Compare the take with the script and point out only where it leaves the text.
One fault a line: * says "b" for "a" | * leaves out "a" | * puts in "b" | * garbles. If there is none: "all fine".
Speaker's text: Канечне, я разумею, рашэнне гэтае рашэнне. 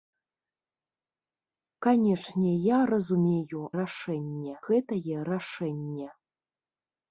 all fine